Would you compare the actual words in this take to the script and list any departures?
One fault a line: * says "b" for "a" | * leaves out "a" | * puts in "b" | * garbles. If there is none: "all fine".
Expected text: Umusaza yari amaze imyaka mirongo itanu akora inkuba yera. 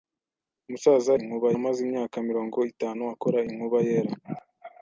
* says "inkuba" for "yari"